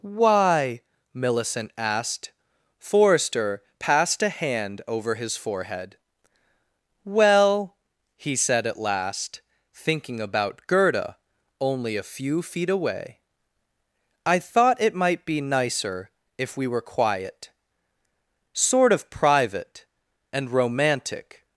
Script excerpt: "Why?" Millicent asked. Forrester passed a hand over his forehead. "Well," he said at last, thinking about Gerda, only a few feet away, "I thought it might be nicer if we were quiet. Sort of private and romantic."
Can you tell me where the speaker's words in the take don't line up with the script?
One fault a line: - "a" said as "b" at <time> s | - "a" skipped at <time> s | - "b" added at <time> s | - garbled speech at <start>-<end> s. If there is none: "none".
none